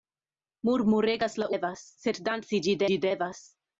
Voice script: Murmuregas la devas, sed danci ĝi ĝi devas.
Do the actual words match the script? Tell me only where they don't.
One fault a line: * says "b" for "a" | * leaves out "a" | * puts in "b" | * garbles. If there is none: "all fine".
all fine